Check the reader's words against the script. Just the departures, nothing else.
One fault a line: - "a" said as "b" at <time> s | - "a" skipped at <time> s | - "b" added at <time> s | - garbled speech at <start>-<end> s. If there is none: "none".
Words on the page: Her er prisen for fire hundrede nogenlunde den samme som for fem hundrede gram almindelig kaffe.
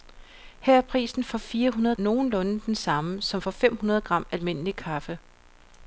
none